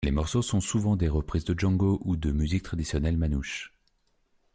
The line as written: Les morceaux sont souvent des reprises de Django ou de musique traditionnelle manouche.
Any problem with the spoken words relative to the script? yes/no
no